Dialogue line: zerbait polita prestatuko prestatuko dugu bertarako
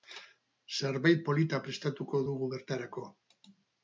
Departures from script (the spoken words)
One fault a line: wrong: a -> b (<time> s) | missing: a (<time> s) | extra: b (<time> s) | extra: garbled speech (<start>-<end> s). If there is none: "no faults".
missing: prestatuko (2.2 s)